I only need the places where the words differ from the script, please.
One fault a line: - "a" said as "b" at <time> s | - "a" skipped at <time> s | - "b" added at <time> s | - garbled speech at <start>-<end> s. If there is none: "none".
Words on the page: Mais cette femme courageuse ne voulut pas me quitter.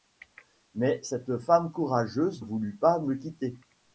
- "ne" skipped at 2.4 s